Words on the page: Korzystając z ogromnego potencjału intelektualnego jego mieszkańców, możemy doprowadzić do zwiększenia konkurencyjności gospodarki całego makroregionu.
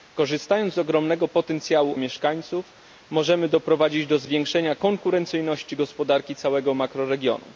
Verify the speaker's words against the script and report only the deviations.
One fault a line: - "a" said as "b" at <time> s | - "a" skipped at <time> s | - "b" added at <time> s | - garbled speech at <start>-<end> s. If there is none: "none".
- "intelektualnego jego" skipped at 2.0 s